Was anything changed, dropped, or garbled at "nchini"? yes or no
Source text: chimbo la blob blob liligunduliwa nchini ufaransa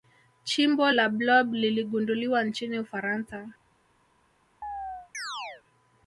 no